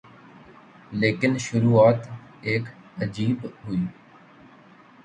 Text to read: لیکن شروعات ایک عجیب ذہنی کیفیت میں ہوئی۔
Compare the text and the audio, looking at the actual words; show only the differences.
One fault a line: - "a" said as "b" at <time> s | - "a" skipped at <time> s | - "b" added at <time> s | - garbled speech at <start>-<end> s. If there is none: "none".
- "ذہنی کیفیت میں" skipped at 3.5 s